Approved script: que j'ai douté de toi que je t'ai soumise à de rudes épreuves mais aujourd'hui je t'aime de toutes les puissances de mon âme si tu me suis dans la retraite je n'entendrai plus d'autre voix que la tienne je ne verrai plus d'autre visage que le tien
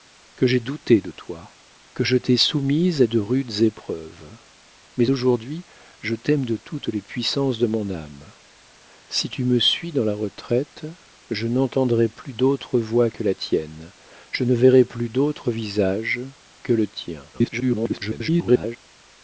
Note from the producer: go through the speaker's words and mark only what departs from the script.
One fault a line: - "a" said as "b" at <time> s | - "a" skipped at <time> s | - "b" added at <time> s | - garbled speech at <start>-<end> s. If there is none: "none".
- garbled speech at 17.3-18.8 s